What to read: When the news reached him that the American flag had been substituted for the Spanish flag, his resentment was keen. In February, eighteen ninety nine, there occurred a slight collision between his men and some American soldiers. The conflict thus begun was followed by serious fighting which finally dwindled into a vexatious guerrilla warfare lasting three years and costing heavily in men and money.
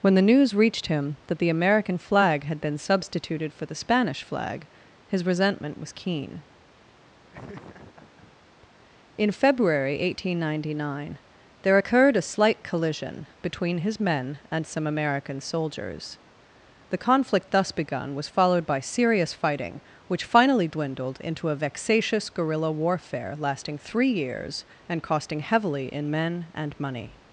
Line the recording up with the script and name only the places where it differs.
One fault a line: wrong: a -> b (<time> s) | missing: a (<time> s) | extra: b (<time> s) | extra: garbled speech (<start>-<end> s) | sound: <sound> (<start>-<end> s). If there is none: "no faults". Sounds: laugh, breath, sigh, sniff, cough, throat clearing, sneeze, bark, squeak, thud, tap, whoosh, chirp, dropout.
sound: laugh (7.3-8.3 s)